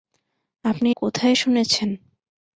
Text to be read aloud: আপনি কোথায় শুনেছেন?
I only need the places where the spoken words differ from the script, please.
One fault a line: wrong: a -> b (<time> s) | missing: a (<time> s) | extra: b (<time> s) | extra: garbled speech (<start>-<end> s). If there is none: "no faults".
no faults